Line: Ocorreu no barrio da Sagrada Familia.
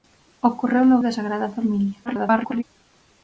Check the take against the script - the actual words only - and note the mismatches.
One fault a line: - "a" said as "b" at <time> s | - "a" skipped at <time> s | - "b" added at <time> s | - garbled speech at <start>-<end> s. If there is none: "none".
- "barrio" skipped at 1.0 s
- garbled speech at 2.1-2.6 s